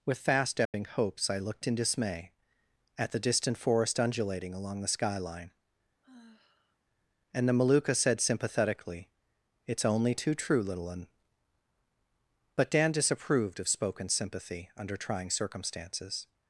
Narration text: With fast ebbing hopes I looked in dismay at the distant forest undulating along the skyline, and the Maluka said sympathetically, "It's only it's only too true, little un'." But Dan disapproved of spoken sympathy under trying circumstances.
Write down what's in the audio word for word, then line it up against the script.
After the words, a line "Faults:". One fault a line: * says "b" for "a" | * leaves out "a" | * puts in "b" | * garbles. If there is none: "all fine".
With fast ebbing hopes I looked in dismay at the distant forest undulating along the skyline, and the Maluka said sympathetically, "It's only too true, little un'." But Dan disapproved of spoken sympathy under trying circumstances.
Faults:
* leaves out "it's only"